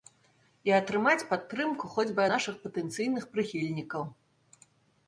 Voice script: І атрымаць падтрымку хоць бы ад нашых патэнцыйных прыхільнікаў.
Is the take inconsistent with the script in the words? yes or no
yes